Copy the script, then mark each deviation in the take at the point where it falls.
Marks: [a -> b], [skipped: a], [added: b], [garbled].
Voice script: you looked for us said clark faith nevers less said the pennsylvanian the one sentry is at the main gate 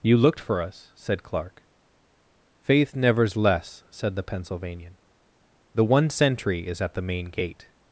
you looked for us said clark faith nevers less said the pennsylvanian the one sentry is at the main gate